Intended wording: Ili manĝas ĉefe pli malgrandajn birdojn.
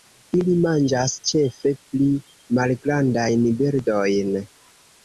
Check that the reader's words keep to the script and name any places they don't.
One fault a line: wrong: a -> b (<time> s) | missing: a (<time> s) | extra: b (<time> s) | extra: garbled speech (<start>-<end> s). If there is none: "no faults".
no faults